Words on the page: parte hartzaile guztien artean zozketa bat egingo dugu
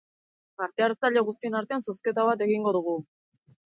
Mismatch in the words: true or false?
false